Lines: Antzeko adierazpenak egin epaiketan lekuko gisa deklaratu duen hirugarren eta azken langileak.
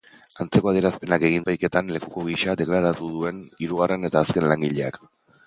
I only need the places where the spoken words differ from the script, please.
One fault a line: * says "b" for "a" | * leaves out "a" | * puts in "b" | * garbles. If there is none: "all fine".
all fine